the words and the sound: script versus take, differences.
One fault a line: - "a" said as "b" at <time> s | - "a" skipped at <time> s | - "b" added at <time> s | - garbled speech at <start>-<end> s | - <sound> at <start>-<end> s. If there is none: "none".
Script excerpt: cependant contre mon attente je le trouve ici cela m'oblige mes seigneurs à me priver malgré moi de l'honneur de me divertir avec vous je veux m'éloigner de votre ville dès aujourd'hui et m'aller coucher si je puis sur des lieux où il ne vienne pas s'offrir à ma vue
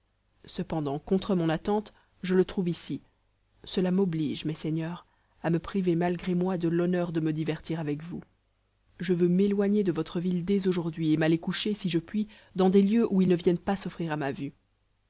- "sur" said as "dans" at 12.6 s